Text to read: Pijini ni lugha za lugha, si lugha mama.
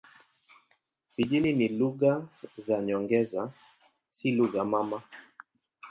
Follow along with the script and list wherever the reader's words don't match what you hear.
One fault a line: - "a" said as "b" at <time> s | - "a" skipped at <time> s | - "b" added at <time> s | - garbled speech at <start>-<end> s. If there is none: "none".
- "lugha" said as "nyongeza" at 2.8 s